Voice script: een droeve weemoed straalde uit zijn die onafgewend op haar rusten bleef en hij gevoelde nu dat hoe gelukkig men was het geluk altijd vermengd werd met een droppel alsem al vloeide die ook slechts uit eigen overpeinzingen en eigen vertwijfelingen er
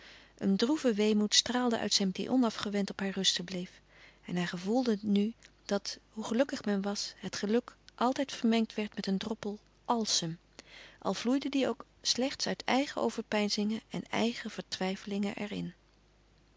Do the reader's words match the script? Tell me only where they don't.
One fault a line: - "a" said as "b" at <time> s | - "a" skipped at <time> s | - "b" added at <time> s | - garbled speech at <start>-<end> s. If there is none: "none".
none